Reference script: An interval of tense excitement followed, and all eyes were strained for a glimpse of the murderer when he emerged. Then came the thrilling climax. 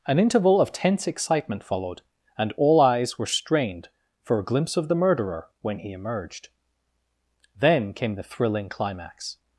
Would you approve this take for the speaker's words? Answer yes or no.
yes